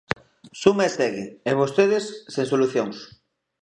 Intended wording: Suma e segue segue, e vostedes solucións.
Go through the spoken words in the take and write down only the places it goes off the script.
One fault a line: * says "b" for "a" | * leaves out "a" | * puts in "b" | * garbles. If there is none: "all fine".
* leaves out "segue"
* puts in "sen"